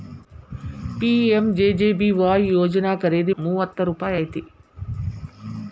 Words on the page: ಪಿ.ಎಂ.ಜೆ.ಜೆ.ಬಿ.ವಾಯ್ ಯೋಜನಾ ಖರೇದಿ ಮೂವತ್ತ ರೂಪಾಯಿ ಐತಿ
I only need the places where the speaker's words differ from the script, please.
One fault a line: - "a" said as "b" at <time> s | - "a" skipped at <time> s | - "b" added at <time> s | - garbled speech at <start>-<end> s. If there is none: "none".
none